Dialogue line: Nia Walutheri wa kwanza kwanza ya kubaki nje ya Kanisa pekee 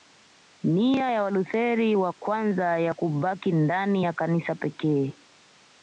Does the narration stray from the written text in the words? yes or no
yes